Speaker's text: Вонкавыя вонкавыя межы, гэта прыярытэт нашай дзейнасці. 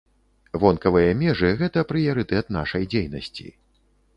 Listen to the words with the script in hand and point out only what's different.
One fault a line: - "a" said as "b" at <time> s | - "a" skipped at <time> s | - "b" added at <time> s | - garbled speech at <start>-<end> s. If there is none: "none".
- "вонкавыя" skipped at 1.1 s